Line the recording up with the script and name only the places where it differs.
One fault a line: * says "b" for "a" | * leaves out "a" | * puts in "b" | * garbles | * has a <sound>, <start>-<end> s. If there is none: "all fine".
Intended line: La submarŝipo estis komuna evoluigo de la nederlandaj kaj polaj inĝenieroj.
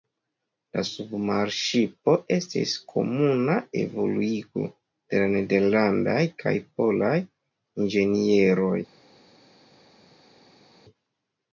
all fine